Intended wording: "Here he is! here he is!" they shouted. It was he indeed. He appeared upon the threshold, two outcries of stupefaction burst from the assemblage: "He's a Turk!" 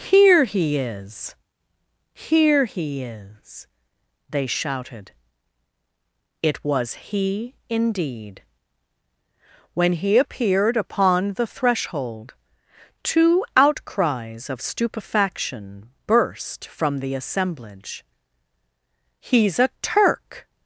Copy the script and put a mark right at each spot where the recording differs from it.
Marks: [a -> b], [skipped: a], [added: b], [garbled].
"Here he is! here he is!" they shouted. It was he indeed. [added: When] He appeared upon the threshold, two outcries of stupefaction burst from the assemblage: "He's a Turk!"